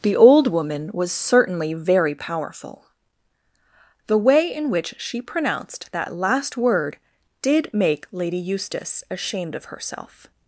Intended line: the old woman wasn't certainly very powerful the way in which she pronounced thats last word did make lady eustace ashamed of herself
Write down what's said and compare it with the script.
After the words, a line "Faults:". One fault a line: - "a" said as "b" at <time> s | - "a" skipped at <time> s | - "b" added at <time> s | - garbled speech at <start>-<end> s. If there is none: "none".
the old woman was certainly very powerful the way in which she pronounced that last word did make lady eustace ashamed of herself
Faults:
- "wasn't" said as "was" at 0.9 s
- "thats" said as "that" at 5.9 s